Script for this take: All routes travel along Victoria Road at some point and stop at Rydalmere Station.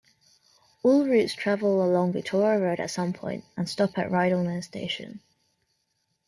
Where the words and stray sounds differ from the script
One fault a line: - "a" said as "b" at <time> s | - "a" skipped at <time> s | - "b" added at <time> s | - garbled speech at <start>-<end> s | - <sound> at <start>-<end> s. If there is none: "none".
none